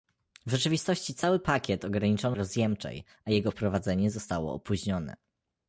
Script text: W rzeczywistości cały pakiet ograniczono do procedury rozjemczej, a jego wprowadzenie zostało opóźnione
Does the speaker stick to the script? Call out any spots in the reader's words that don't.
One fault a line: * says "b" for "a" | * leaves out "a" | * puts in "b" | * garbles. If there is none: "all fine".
* leaves out "do procedury"